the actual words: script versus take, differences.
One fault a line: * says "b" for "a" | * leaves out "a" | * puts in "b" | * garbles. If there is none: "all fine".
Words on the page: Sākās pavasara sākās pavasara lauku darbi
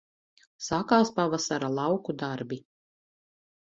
* leaves out "sākās pavasara"